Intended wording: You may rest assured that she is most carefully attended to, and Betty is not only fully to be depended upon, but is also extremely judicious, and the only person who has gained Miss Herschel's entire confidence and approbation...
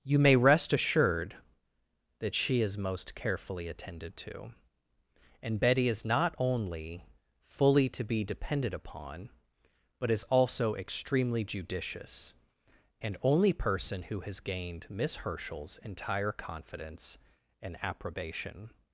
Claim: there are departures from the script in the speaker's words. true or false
true